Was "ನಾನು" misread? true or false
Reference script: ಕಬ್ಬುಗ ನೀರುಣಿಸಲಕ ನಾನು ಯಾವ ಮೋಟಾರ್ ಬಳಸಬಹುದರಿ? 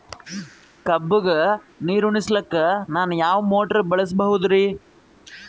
false